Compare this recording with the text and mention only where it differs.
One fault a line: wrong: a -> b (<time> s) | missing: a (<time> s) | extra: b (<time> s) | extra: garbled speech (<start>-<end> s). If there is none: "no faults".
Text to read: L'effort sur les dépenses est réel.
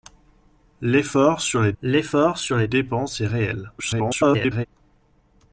extra: l'effort sur les (1.8 s)
extra: garbled speech (3.8-4.7 s)